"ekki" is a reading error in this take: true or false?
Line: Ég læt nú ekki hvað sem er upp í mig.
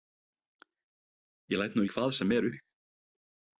true